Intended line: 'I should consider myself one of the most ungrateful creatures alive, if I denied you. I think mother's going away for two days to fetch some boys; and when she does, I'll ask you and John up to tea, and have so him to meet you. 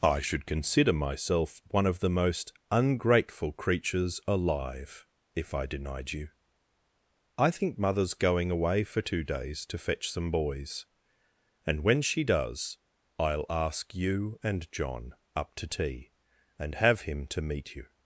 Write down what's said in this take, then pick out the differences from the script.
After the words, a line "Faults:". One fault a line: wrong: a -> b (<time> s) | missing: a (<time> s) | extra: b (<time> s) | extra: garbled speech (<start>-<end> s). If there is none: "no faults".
'I should consider myself one of the most ungrateful creatures alive, if I denied you. I think mother's going away for two days to fetch some boys; and when she does, I'll ask you and John up to tea, and have him to meet you.
Faults:
missing: so (17.0 s)